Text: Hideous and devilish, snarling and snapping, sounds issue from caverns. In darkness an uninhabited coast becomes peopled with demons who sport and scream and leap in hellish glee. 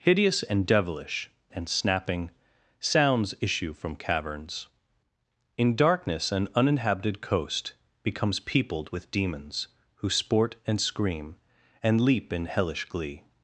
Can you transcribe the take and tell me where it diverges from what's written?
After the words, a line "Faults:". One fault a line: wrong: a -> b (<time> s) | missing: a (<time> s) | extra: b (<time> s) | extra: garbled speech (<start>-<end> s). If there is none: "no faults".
Hideous and devilish, and snapping, sounds issue from caverns. In darkness an uninhabited coast becomes peopled with demons who sport and scream and leap in hellish glee.
Faults:
missing: snarling (1.3 s)